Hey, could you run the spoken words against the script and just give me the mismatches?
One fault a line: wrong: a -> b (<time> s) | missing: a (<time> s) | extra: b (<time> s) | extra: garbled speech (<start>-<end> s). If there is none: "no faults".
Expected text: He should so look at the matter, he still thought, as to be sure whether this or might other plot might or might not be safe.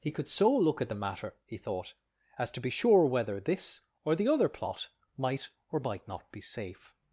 wrong: should -> could (0.1 s)
missing: still (1.6 s)
wrong: might -> the (4.1 s)